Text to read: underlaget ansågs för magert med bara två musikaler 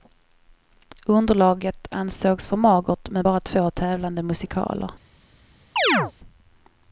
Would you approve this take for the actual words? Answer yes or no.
no